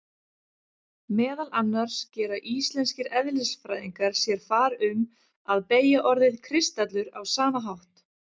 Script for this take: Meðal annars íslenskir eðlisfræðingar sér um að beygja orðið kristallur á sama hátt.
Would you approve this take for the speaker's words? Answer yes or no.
no